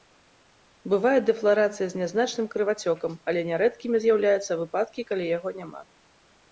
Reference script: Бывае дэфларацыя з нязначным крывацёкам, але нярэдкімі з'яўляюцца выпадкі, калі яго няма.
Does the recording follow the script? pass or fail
pass